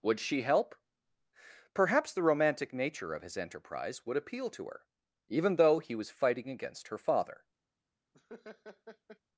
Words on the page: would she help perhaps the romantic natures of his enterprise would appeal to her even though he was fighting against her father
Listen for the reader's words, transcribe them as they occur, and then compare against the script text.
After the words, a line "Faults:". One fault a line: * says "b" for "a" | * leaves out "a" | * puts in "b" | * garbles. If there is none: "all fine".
would she help perhaps the romantic nature of his enterprise would appeal to her even though he was fighting against her father
Faults:
* says "nature" for "natures"